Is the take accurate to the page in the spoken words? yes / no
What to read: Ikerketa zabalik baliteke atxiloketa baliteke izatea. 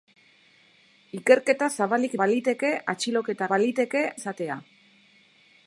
yes